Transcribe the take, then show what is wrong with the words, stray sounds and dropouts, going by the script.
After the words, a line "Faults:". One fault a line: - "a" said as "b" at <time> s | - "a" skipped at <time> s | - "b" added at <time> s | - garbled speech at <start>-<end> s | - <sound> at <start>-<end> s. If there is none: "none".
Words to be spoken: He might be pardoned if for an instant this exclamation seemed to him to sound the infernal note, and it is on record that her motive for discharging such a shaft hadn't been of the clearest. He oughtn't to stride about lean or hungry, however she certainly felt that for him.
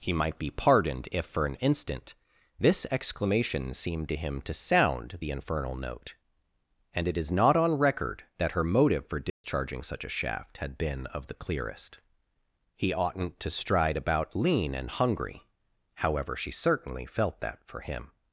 He might be pardoned if for an instant this exclamation seemed to him to sound the infernal note, and it is not on record that her motive for discharging such a shaft had been of the clearest. He oughtn't to stride about lean and hungry, however she certainly felt that for him.
Faults:
- "not" added at 7.3 s
- dropout at 9.3-9.4 s
- "hadn't" said as "had" at 10.6 s
- "or" said as "and" at 14.7 s